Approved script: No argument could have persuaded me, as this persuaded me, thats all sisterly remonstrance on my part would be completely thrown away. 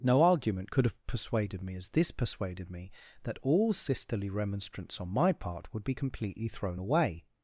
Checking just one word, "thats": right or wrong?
wrong